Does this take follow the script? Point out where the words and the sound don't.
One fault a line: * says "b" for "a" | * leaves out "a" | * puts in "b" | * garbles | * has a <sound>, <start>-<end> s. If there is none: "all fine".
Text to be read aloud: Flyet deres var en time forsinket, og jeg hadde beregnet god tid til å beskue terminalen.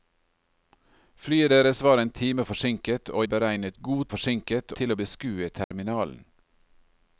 * leaves out "jeg hadde"
* says "forsinket" for "tid"
* has a dropout, 5.6-5.7 s